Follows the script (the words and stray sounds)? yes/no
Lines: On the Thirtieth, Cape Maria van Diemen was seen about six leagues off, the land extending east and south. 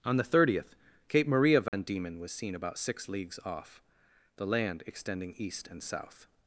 no